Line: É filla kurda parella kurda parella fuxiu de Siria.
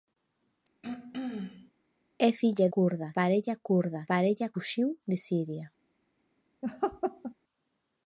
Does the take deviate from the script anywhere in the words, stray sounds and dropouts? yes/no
yes